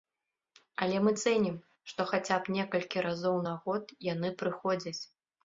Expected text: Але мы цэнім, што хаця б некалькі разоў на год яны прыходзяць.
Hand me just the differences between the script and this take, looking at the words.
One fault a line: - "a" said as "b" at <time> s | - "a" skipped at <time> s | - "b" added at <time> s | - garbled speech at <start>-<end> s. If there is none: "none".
none